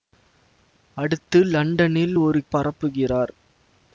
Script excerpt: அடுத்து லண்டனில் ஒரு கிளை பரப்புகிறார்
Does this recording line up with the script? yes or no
no